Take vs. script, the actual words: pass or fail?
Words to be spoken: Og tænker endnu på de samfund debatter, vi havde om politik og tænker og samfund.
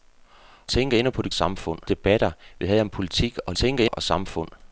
pass